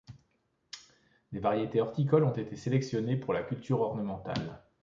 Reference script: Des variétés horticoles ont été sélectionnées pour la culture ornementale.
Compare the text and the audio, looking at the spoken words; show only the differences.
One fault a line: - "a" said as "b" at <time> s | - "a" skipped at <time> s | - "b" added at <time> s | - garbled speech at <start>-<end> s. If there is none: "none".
none